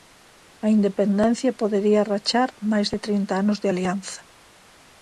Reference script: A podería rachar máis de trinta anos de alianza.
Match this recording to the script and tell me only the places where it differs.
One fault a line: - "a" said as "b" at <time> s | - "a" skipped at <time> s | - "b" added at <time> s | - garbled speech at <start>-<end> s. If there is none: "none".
- "independencia" added at 0.8 s